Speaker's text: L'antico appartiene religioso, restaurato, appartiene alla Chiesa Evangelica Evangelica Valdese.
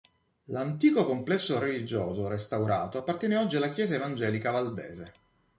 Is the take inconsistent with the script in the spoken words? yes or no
yes